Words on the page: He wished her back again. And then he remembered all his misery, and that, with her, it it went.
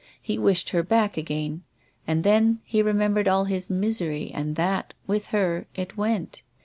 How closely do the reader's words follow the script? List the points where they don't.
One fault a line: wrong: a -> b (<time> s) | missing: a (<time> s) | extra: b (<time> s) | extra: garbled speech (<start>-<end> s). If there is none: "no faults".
missing: it (6.0 s)